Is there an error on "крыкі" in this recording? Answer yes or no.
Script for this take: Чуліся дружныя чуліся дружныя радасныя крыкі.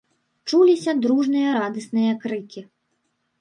no